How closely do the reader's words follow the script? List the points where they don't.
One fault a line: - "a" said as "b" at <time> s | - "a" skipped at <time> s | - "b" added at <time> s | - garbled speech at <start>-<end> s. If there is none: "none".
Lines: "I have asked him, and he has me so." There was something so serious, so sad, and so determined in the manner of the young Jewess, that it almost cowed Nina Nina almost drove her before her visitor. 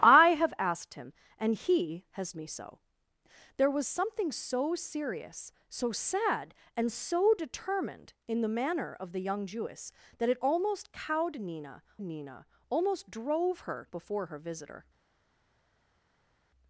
none